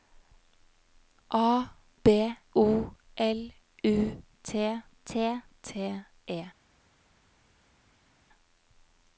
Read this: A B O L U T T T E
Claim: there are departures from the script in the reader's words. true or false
false